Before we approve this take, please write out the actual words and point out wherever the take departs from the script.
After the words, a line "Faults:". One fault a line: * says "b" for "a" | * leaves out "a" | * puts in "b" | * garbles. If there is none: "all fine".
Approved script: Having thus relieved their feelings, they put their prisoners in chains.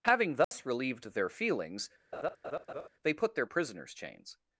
Having thus relieved their feelings, they put their prisoners chains.
Faults:
* leaves out "in"